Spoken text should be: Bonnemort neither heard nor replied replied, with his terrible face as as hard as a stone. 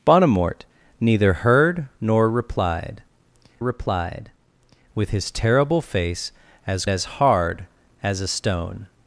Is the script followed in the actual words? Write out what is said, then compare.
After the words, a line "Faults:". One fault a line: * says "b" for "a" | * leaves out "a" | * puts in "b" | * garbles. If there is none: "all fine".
Bonnemort neither heard nor replied replied, with his terrible face as as hard as a stone.
Faults:
all fine